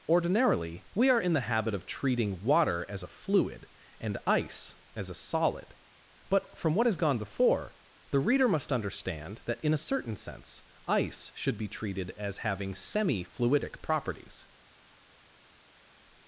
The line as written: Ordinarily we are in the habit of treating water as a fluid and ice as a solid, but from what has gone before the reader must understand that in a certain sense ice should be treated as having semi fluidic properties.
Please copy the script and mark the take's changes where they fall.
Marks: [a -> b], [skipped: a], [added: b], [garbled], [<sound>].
Ordinarily we are in the habit of treating water as a fluid and ice as a solid, but from what has gone before the reader must understand that in a certain sense ice should be treated as having semi fluidic properties.